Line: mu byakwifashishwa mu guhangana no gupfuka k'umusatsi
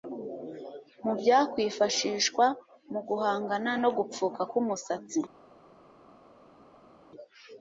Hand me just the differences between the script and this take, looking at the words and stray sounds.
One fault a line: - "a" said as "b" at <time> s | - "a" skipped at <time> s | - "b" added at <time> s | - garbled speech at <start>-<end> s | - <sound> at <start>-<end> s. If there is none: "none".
none